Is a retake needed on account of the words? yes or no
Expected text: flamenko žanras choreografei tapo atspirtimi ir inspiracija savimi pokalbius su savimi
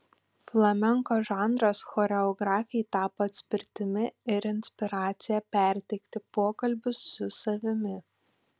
yes